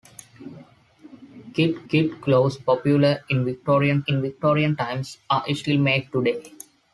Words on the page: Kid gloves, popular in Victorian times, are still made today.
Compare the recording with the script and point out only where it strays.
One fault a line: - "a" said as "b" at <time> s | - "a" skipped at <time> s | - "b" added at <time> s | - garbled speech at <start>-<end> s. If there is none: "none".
- "kid" added at 1.9 s
- "in Victorian" added at 4.1 s